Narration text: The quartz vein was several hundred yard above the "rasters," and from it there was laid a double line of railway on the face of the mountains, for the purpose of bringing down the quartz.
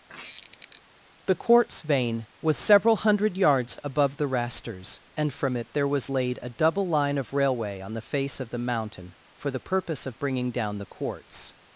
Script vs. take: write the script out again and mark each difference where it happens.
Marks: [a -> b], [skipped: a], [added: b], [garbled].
The quartz vein was several hundred [yard -> yards] above the "rasters," and from it there was laid a double line of railway on the face of the [mountains, -> mountain] for the purpose of bringing down the quartz.